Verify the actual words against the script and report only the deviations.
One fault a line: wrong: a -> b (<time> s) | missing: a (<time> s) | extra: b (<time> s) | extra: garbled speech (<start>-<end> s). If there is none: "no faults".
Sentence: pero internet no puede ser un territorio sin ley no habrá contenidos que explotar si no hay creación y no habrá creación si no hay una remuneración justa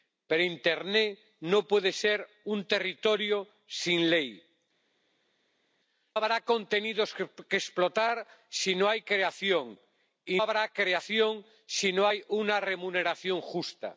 missing: no (4.4 s)
missing: no (10.4 s)